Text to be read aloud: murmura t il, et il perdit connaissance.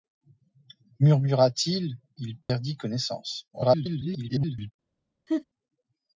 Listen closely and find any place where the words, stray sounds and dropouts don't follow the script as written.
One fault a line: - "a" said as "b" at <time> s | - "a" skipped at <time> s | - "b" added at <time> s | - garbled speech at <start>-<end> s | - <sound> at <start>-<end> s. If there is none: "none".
- "et" skipped at 2.0 s
- dropout at 2.4-2.5 s
- garbled speech at 3.5-4.7 s
- laugh at 5.3-5.4 s